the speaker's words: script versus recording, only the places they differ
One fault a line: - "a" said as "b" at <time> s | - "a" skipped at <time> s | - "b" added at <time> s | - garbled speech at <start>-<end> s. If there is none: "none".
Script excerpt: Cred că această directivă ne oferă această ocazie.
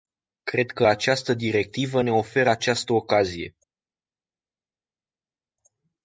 none